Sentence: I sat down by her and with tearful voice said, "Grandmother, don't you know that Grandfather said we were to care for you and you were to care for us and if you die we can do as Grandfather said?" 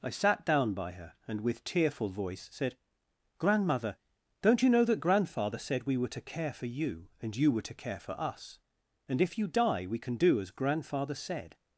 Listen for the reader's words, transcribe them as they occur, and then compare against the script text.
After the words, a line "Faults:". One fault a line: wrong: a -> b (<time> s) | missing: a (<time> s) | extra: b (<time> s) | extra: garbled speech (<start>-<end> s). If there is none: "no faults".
I sat down by her and with tearful voice said, "Grandmother, don't you know that Grandfather said we were to care for you and you were to care for us and if you die we can do as Grandfather said?"
Faults:
no faults